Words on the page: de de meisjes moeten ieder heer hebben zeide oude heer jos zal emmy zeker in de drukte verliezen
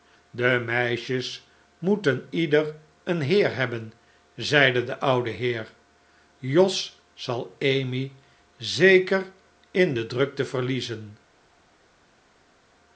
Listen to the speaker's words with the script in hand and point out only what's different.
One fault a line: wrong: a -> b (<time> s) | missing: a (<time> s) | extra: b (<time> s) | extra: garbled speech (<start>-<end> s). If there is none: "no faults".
missing: de (0.6 s)
extra: een (3.0 s)
extra: de (4.8 s)